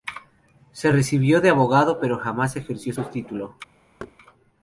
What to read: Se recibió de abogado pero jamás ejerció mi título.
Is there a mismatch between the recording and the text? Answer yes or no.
yes